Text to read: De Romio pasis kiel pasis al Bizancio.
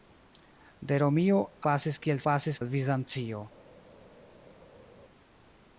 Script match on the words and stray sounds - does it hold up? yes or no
yes